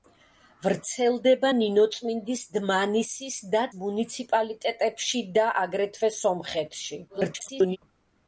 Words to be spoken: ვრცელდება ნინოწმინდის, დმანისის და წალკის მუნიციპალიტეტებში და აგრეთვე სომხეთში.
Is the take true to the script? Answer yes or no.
no